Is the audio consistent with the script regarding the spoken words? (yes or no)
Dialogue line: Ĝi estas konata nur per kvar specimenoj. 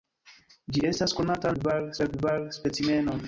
no